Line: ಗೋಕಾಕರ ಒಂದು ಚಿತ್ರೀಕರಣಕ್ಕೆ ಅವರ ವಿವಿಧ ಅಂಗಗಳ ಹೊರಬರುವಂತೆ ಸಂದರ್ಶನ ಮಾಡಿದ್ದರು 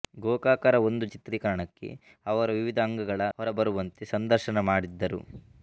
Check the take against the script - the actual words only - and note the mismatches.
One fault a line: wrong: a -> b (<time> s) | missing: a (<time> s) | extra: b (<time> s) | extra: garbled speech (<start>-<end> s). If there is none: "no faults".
no faults